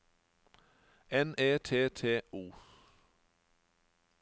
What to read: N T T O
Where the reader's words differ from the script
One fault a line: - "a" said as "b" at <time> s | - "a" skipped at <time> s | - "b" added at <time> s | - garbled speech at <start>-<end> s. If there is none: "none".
- "E" added at 1.4 s